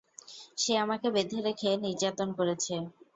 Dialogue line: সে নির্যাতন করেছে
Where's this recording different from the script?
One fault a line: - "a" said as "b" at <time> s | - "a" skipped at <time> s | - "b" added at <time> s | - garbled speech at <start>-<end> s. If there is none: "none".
- "আমাকে বেঁধে রেখে" added at 0.8 s